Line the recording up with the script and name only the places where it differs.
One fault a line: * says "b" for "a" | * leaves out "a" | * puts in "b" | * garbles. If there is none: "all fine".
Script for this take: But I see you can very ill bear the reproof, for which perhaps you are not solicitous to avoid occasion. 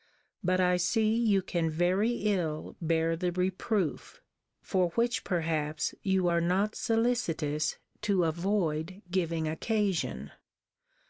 * puts in "giving"